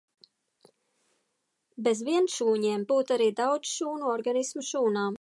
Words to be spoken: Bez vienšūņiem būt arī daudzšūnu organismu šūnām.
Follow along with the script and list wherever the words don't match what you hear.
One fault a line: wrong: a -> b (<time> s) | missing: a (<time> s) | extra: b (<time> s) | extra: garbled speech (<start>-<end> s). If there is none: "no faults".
no faults